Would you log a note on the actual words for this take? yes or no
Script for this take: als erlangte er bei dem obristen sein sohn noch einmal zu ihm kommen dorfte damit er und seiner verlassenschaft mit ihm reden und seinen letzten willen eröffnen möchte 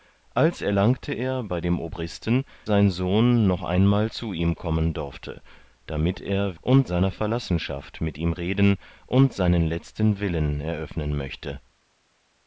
no